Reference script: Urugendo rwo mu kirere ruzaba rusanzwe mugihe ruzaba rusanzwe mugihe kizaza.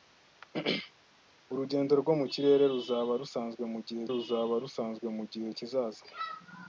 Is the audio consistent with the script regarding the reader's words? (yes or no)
yes